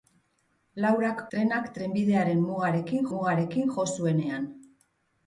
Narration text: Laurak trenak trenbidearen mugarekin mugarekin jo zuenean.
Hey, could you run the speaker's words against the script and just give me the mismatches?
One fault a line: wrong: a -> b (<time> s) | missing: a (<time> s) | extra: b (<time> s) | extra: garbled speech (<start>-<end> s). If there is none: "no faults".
no faults